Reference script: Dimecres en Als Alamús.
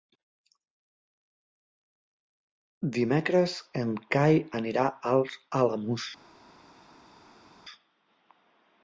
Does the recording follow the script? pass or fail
fail